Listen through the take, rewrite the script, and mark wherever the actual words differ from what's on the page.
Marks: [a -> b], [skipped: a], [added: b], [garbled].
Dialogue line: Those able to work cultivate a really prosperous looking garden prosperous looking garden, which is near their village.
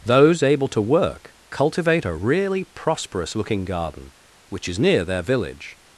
Those able to work cultivate a really prosperous looking garden [skipped: prosperous looking garden,] which is near their village.